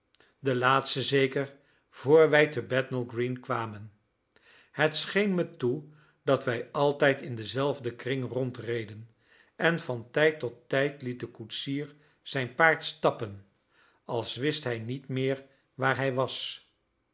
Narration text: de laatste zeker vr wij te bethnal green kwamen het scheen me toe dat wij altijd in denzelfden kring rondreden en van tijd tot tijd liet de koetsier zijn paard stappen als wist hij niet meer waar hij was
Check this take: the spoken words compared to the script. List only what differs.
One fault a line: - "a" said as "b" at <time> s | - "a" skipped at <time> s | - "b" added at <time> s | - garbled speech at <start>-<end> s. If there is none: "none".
none